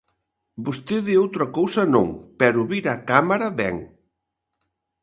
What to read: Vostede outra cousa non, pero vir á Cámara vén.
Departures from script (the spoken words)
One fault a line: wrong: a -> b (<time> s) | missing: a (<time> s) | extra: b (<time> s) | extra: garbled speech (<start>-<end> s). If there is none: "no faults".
no faults